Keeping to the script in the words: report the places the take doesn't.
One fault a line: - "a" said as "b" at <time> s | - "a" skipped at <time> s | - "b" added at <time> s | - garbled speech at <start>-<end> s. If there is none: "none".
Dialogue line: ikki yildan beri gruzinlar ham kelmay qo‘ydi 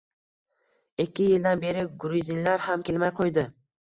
none